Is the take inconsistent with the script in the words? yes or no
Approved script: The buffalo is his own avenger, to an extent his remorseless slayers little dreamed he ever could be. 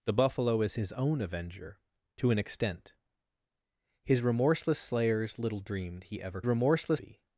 yes